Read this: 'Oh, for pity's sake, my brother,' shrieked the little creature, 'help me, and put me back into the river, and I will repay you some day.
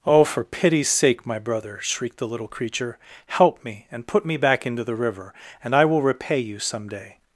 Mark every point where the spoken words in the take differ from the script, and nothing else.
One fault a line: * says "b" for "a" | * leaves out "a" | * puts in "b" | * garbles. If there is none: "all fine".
all fine